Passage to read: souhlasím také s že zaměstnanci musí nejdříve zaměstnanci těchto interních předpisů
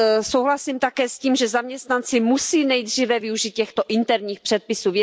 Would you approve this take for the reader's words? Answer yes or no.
no